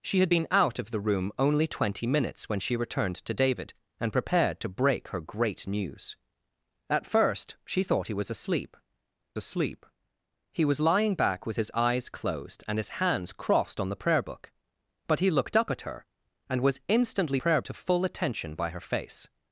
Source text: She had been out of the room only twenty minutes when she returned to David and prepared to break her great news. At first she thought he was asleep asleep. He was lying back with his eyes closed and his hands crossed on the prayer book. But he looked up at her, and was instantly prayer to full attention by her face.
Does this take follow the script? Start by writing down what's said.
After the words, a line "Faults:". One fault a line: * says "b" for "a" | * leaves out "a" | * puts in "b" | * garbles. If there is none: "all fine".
She had been out of the room only twenty minutes when she returned to David and prepared to break her great news. At first she thought he was asleep asleep. He was lying back with his eyes closed and his hands crossed on the prayer book. But he looked up at her, and was instantly prayer to full attention by her face.
Faults:
all fine